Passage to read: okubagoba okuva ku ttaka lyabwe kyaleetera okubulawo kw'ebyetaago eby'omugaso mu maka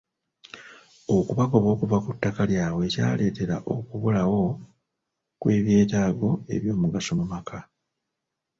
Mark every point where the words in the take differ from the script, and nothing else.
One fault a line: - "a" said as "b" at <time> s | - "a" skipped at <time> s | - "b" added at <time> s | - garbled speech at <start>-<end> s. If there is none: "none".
none